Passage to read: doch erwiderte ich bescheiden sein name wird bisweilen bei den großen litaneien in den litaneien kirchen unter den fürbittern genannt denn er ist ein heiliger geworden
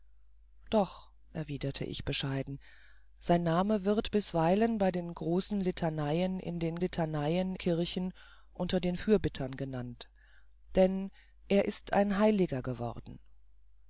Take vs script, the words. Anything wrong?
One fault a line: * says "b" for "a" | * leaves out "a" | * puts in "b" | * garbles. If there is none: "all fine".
all fine